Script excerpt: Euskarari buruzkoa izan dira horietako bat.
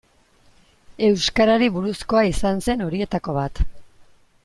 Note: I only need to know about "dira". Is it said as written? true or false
false